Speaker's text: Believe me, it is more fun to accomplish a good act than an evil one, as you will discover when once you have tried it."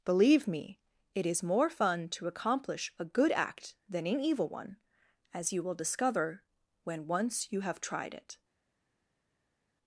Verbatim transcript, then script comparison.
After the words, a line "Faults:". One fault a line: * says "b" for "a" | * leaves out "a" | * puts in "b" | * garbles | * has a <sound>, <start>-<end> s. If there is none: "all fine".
Believe me, it is more fun to accomplish a good act than an evil one, as you will discover when once you have tried it."
Faults:
all fine